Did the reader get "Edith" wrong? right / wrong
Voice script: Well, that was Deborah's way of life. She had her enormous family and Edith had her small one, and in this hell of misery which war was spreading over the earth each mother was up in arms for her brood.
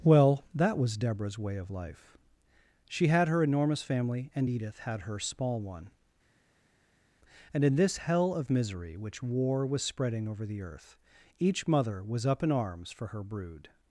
right